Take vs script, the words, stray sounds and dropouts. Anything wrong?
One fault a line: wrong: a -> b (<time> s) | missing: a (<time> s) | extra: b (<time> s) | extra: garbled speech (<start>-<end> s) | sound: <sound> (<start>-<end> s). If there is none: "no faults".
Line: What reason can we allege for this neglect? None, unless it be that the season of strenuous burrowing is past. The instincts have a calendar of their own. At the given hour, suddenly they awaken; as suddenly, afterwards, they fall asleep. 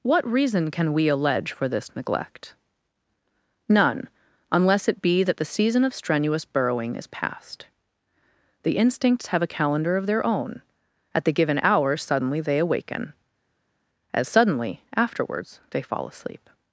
no faults